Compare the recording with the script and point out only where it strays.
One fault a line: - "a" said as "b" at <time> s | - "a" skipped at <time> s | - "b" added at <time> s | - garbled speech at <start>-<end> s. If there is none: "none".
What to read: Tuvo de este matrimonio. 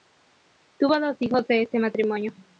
- "dos hijos" added at 1.0 s